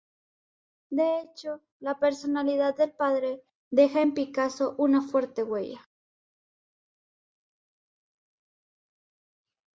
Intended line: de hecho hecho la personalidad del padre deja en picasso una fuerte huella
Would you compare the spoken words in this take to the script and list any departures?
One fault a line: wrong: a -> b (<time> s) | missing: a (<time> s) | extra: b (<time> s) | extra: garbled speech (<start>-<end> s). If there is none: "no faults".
missing: hecho (1.6 s)